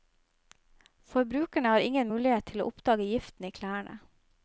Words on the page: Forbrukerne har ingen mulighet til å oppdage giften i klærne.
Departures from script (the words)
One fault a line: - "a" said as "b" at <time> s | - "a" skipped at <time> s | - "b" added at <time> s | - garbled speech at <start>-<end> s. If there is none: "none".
none